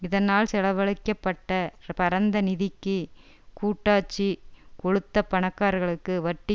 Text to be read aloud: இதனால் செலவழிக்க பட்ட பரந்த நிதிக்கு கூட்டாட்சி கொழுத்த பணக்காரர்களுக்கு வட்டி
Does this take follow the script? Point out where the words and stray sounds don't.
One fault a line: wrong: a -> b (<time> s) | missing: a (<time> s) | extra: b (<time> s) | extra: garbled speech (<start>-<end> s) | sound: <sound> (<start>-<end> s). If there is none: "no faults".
no faults